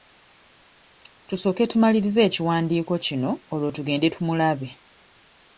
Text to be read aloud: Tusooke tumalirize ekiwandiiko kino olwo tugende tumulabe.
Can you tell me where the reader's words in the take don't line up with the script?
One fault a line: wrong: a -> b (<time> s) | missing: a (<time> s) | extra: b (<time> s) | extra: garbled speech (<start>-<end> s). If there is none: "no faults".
no faults